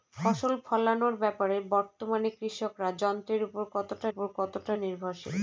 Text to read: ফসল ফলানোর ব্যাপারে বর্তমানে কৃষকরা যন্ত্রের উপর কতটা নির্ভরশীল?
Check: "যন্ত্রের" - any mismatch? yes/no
no